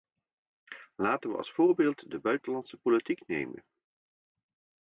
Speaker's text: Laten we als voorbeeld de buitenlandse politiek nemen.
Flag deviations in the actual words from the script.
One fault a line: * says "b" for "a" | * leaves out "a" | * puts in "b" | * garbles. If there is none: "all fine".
all fine